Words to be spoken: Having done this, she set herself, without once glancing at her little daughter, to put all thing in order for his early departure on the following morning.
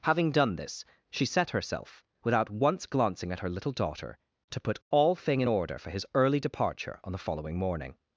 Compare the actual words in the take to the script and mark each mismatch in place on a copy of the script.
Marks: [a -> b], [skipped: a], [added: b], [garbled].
Having done this, she set herself, without once glancing at her little daughter, to put all thing in order for his early departure on the following morning.